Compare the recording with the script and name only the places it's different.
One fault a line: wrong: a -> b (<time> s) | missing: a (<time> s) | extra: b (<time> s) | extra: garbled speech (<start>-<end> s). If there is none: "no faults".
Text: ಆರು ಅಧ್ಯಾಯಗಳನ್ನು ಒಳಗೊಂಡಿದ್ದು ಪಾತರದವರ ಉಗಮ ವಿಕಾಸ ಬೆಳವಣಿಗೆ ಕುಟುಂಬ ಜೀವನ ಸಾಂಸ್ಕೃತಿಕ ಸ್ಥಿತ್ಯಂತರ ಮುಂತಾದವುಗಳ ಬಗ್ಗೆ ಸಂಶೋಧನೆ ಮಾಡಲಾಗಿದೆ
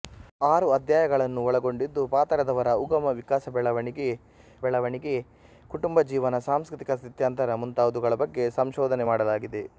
extra: ಬೆಳವಣಿಗೆ (4.6 s)